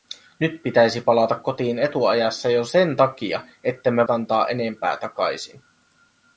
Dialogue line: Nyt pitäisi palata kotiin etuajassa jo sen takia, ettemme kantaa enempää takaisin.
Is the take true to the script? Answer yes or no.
yes